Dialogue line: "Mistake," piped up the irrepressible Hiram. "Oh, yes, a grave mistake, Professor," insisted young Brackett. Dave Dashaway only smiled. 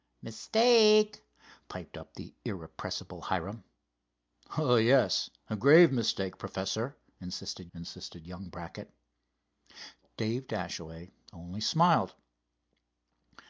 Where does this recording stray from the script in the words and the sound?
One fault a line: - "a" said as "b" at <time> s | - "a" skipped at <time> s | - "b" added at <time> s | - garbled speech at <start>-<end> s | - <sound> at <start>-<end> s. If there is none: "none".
- "insisted" added at 7.7 s